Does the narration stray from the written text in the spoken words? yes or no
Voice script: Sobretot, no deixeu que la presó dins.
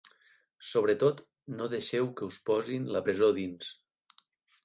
yes